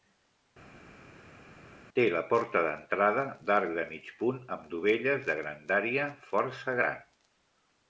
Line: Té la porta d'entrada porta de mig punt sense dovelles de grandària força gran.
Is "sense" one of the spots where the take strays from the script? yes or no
yes